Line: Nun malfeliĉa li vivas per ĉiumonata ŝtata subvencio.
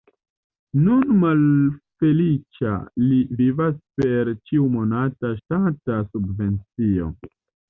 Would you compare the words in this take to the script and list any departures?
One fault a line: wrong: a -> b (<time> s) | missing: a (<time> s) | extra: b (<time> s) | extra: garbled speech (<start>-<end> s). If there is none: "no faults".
no faults